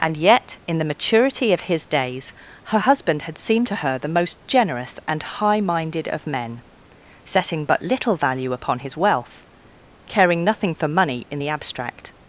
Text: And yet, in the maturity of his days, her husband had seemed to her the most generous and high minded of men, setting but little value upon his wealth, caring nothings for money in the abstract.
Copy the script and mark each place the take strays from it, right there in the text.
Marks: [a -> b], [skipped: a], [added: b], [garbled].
And yet, in the maturity of his days, her husband had seemed to her the most generous and high minded of men, setting but little value upon his wealth, caring [nothings -> nothing] for money in the abstract.